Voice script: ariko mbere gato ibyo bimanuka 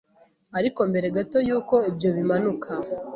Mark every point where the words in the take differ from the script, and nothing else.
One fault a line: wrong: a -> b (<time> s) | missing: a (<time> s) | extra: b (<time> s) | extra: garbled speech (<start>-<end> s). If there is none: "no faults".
extra: yuko (1.5 s)